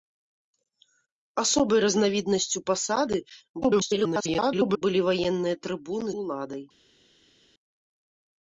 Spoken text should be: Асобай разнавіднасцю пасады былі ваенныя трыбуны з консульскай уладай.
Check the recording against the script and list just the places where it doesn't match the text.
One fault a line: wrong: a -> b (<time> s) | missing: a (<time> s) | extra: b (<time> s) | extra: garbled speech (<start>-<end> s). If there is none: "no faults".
extra: garbled speech (3.6-4.8 s)
missing: з консульскай (6.1 s)